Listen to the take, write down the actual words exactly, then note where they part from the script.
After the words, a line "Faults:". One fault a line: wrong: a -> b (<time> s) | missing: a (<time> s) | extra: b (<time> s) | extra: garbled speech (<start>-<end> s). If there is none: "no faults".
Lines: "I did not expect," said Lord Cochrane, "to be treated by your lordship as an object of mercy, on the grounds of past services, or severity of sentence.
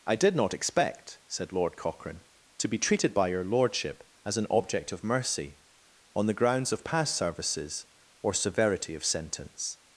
"I did not expect," said Lord Cochrane, "to be treated by your lordship as an object of mercy, on the grounds of past services, or severity of sentence.
Faults:
no faults